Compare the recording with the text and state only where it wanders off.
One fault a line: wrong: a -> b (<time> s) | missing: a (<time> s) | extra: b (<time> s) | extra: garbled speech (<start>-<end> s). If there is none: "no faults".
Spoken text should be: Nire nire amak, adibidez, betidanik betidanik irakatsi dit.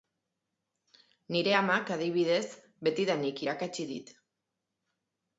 missing: nire (1.5 s)
missing: betidanik (3.4 s)